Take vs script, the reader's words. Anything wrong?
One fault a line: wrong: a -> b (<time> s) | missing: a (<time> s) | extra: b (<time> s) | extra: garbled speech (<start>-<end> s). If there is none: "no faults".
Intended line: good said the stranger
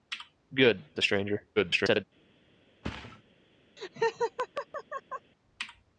missing: said (0.8 s)
extra: garbled speech (1.6-2.0 s)